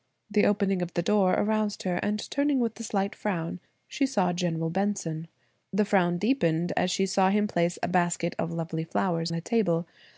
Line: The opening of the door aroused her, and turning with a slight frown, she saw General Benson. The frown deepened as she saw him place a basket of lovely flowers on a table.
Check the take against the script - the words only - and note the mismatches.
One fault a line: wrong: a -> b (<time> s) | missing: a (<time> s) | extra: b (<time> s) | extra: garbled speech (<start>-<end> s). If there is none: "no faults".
missing: on (9.3 s)